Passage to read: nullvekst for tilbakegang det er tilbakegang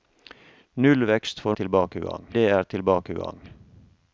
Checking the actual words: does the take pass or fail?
pass